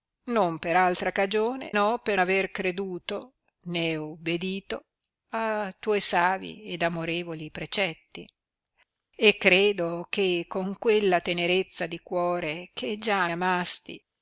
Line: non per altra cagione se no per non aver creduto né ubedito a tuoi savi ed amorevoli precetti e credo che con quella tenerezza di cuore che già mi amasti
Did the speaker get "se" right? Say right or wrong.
wrong